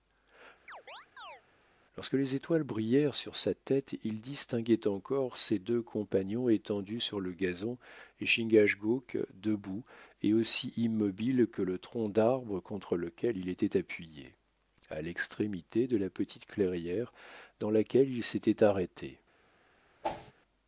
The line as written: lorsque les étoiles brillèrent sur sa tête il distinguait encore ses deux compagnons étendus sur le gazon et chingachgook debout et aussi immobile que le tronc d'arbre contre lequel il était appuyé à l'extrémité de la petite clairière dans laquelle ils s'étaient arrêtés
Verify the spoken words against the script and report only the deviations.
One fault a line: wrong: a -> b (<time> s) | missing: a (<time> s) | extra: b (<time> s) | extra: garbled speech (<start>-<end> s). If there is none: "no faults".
no faults